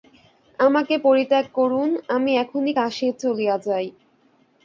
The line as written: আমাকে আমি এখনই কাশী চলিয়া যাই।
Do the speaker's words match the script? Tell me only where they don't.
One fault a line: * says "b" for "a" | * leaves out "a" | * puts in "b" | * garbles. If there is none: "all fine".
* puts in "পরিত্যাগ করুন"